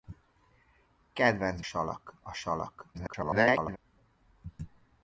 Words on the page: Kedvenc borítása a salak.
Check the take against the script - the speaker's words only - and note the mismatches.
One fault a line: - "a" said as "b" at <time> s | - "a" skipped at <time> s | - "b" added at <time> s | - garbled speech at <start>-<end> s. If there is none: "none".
- "borítása" said as "salak" at 1.6 s
- garbled speech at 2.9-3.8 s